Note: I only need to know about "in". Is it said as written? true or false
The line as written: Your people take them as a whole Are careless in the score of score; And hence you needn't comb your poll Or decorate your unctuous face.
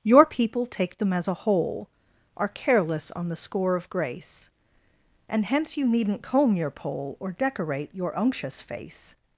false